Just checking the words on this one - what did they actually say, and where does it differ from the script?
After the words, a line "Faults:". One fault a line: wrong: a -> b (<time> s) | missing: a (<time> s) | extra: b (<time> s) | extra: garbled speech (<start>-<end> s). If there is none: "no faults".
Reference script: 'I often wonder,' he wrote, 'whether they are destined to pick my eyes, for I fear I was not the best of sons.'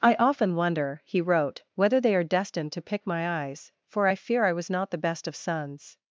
'I often wonder,' he wrote, 'whether they are destined to pick my eyes, for I fear I was not the best of sons.'
Faults:
no faults